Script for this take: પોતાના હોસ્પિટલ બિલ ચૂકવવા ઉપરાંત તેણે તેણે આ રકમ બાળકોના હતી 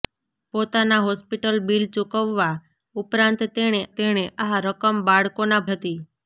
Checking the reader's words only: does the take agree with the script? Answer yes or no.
yes